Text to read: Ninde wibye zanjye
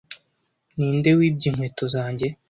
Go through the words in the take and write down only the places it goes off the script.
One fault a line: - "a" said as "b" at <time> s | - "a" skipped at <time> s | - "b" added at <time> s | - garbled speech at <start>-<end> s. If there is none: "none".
- "inkweto" added at 1.5 s